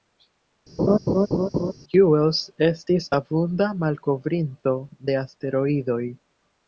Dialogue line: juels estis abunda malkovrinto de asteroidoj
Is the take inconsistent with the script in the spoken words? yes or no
no